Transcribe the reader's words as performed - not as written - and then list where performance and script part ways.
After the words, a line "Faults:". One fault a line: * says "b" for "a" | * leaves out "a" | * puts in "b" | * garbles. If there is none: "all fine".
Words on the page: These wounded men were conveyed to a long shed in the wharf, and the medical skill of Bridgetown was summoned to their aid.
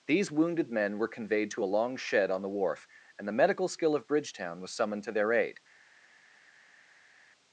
These wounded men were conveyed to a long shed on the wharf, and the medical skill of Bridgetown was summoned to their aid.
Faults:
* says "on" for "in"